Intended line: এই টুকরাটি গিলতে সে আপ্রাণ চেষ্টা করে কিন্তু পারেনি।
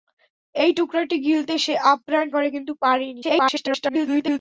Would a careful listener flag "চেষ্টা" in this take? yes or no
yes